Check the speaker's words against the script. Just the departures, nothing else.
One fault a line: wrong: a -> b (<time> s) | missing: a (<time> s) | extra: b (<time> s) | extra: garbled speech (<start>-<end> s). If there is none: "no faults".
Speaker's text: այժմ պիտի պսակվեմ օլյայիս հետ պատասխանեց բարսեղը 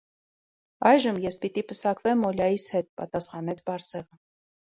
extra: ես (1.2 s)